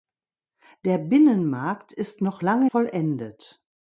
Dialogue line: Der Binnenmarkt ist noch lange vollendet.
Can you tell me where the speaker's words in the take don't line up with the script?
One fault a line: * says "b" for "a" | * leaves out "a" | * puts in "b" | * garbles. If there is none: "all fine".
all fine